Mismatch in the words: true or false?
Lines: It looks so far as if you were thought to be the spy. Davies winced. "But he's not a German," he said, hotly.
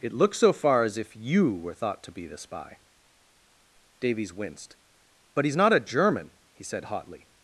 false